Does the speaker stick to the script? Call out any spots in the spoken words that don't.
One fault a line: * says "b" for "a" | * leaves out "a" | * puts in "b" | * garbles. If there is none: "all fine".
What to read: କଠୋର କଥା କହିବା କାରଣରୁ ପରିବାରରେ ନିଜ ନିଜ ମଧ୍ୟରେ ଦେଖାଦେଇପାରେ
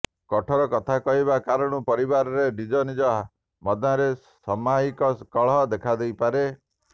* puts in "ସାମୟିକ କଳହ"